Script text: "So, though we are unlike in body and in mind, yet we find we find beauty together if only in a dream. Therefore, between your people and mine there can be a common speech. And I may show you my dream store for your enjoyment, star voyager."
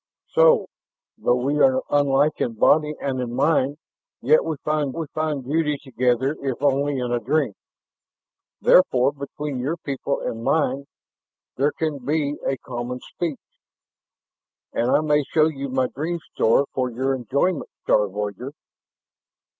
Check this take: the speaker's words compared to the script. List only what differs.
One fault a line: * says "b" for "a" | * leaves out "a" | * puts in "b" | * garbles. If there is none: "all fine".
all fine